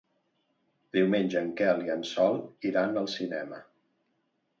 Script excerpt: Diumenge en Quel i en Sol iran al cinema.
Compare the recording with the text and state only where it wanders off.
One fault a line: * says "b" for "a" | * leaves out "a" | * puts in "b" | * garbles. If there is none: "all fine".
all fine